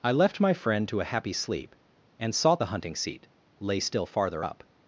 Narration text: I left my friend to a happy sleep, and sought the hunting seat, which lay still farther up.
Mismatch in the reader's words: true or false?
true